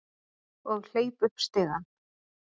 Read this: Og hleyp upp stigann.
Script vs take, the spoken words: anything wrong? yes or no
no